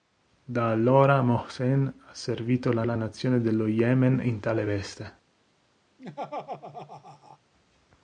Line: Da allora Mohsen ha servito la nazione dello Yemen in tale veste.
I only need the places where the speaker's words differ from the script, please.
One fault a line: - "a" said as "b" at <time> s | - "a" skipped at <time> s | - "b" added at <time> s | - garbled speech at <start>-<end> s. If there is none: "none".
- "la" added at 2.8 s